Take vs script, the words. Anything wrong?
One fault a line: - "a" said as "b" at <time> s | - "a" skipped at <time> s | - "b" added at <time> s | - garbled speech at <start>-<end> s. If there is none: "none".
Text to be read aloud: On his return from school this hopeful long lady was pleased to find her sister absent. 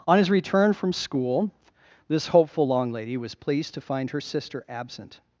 none